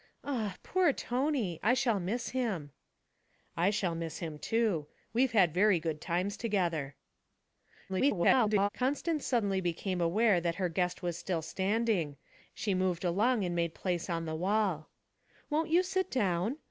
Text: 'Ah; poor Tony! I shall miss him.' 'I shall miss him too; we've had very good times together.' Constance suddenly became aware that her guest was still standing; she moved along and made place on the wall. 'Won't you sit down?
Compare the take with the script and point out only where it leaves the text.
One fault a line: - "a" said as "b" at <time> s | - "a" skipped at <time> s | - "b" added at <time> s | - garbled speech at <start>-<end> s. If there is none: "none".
- garbled speech at 7.9-8.7 s